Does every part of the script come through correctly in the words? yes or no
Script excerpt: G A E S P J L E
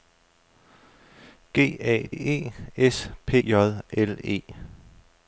yes